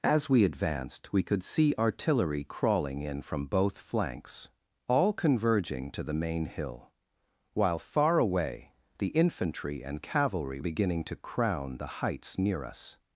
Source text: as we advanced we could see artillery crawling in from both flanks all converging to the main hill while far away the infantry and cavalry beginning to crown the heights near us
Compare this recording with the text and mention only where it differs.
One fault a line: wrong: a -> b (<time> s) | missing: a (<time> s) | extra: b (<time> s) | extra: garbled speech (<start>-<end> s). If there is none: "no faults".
no faults